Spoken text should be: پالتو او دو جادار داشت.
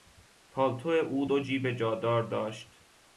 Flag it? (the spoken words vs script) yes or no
yes